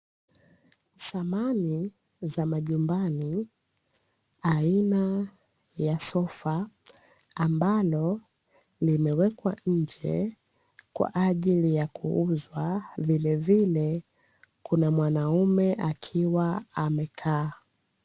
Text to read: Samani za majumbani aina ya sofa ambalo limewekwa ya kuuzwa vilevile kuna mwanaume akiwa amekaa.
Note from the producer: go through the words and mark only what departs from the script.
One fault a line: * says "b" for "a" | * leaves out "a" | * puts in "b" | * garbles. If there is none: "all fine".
* puts in "nje kwa ajili"